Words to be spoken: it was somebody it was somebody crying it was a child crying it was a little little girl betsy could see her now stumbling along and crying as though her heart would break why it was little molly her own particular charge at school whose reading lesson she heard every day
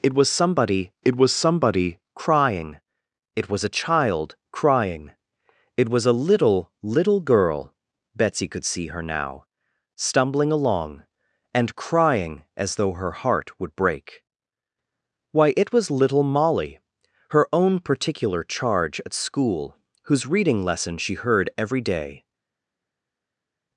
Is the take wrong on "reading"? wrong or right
right